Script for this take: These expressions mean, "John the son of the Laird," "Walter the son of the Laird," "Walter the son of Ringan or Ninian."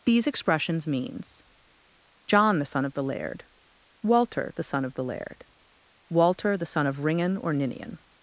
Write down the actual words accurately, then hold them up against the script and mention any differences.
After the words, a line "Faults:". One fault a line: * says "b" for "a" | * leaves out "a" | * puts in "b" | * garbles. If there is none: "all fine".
These expressions means, "John the son of the Laird," "Walter the son of the Laird," "Walter the son of Ringan or Ninian."
Faults:
* says "means" for "mean"